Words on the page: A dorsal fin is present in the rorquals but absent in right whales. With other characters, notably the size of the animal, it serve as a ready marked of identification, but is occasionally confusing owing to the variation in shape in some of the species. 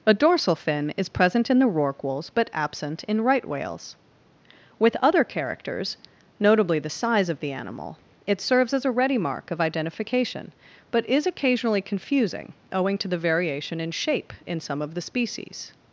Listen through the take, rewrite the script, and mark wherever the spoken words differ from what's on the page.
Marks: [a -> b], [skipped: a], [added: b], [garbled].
A dorsal fin is present in the rorquals but absent in right whales. With other characters, notably the size of the animal, it [serve -> serves] as a ready [marked -> mark] of identification, but is occasionally confusing owing to the variation in shape in some of the species.